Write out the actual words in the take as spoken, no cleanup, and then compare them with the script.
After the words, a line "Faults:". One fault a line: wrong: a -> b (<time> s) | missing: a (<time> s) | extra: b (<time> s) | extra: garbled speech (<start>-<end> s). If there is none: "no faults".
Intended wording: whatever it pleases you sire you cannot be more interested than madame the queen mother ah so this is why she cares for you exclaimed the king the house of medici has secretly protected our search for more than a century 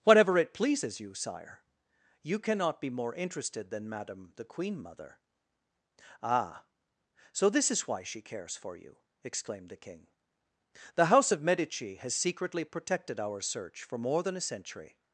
whatever it pleases you sire you cannot be more interested than madame the queen mother ah so this is why she cares for you exclaimed the king the house of medici has secretly protected our search for more than a century
Faults:
no faults